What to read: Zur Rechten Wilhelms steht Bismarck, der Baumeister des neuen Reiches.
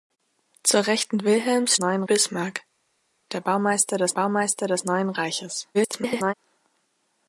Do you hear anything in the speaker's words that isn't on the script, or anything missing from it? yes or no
yes